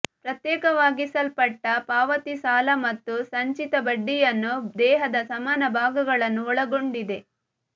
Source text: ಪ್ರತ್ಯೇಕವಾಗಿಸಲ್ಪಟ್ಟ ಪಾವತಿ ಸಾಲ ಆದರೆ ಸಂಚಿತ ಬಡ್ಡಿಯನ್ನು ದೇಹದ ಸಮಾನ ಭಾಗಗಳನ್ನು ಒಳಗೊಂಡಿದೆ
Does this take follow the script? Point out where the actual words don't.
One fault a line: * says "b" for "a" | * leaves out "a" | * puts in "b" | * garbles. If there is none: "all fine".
* says "ಮತ್ತು" for "ಆದರೆ"